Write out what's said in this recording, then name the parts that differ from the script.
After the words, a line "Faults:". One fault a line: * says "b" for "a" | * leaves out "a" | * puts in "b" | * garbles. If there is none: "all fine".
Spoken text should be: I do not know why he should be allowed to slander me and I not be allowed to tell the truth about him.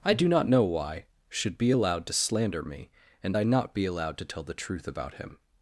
I do not know why should be allowed to slander me and I not be allowed to tell the truth about him.
Faults:
* leaves out "he"